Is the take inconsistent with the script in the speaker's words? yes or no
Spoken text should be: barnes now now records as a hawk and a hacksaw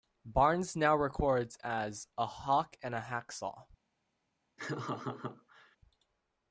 yes